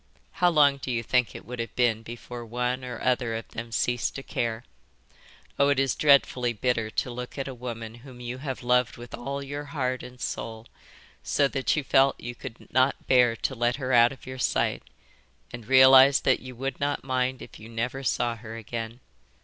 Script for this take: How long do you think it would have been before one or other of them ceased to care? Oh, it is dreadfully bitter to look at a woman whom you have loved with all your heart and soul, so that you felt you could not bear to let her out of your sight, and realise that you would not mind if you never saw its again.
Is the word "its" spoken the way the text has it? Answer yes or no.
no